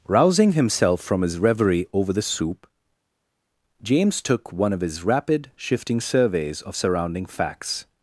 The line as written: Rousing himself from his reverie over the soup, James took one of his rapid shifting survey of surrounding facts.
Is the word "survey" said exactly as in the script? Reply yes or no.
no